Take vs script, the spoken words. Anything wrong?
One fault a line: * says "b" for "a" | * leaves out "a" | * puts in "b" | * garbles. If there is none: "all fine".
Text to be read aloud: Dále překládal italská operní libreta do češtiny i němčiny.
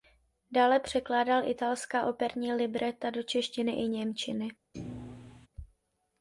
all fine